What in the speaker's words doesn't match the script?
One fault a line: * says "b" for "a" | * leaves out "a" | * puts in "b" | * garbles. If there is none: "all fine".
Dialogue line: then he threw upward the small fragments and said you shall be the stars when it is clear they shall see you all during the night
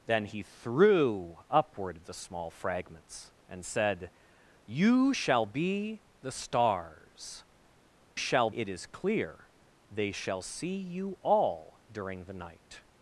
* says "shall" for "when"